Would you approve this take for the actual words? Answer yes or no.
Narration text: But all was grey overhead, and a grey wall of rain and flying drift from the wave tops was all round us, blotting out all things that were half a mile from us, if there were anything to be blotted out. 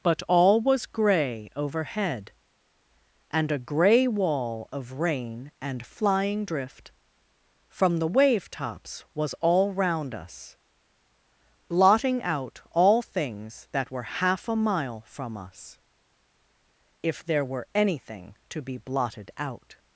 yes